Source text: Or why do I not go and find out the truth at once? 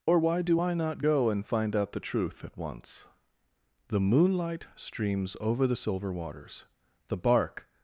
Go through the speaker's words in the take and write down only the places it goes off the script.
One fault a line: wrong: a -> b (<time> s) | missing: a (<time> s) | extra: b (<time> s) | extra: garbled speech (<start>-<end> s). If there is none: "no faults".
extra: The moonlight streams over the silver waters the bark (3.9 s)